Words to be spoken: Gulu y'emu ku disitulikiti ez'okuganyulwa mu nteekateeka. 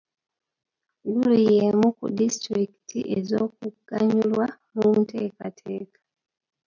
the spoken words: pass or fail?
pass